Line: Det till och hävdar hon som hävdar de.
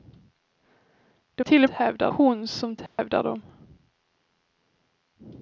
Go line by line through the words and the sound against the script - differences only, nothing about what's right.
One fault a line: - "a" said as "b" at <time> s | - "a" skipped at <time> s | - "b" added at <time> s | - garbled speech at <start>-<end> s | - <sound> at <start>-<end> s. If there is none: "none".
- dropout at 2.9-3.0 s